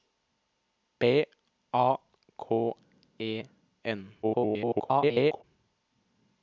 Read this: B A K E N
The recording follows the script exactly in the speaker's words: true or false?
false